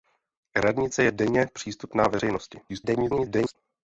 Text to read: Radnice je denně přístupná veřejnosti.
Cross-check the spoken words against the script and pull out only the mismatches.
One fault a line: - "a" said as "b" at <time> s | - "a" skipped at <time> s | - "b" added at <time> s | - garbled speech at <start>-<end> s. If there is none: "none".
- garbled speech at 2.7-3.6 s